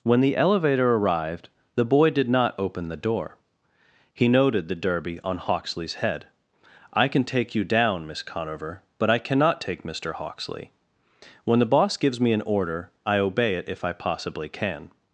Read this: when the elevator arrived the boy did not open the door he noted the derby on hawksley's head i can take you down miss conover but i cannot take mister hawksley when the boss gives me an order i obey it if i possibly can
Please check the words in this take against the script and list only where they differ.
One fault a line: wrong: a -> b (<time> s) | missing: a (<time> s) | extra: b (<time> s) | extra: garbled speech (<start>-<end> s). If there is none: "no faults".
no faults